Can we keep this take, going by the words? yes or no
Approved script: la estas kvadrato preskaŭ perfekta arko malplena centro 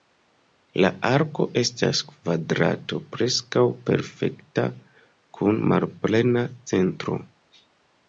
no